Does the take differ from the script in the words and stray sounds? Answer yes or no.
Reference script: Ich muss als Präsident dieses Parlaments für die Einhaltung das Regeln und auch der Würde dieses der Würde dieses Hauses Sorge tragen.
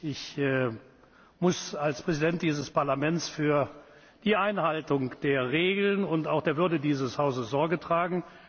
yes